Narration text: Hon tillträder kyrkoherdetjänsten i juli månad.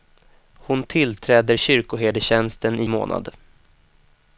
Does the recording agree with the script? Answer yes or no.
no